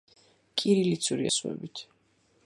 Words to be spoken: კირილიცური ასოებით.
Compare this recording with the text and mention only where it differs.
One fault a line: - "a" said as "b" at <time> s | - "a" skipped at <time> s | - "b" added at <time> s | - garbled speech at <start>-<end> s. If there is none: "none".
none